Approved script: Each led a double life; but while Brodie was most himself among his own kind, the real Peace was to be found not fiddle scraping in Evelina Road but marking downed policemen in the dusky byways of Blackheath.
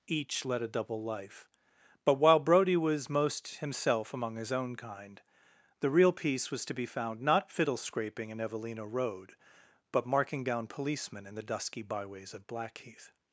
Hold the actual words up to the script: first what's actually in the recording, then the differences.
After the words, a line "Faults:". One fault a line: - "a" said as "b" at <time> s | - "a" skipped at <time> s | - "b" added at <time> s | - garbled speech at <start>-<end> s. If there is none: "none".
Each led a double life; but while Brodie was most himself among his own kind, the real Peace was to be found not fiddle scraping in Evelina Road but marking down policemen in the dusky byways of Blackheath.
Faults:
- "downed" said as "down" at 10.4 s